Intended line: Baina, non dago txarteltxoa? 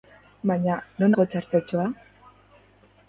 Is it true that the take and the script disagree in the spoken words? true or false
false